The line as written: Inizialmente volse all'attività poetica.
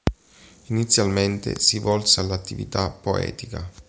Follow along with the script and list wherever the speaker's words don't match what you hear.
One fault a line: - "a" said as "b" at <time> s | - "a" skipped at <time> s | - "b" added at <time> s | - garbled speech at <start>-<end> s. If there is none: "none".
- "si" added at 1.6 s